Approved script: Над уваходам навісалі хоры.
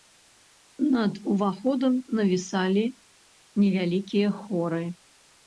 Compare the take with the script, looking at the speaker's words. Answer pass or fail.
fail